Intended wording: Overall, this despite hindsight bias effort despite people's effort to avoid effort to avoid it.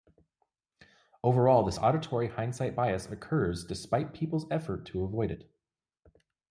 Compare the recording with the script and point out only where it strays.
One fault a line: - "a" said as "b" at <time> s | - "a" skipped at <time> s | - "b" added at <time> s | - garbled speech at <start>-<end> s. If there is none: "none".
- "despite" said as "auditory" at 1.8 s
- "effort" said as "occurs" at 3.1 s
- "effort to avoid" skipped at 5.3 s